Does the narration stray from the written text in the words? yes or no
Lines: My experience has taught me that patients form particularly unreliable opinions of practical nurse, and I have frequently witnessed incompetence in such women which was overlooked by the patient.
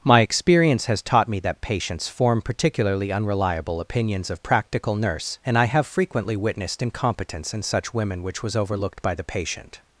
no